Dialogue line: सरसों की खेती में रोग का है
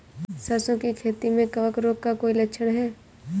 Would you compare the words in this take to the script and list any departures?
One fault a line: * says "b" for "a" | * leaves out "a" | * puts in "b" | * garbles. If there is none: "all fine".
* puts in "कवक"
* puts in "कोई लक्षण"